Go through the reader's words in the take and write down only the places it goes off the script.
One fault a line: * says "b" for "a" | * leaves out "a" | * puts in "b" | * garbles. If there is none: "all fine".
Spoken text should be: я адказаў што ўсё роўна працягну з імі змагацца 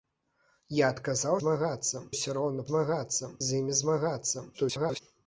* says "змагацца" for "што"
* says "змагацца" for "працягну"
* garbles